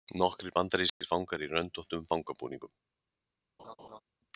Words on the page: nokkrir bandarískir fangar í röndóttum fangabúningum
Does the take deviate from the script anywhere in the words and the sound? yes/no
yes